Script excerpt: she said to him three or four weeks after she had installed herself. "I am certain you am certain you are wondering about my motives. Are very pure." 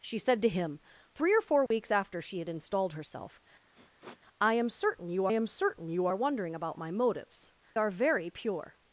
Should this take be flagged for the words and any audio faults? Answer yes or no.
yes